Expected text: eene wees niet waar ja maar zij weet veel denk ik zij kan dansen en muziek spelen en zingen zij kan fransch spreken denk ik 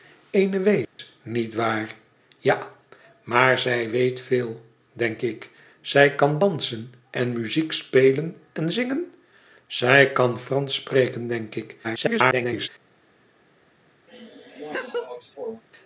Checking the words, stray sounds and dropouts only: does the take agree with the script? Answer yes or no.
no